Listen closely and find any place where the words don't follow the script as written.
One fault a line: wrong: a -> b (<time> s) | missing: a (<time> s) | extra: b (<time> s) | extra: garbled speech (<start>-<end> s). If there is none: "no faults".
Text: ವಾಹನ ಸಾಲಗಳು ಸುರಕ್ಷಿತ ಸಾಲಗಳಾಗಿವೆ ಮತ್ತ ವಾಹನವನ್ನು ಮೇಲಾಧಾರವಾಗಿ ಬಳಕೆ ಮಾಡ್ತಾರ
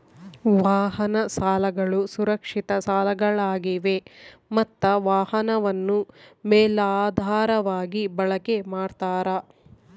no faults